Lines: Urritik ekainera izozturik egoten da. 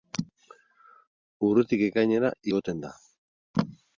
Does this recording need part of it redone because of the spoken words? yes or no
yes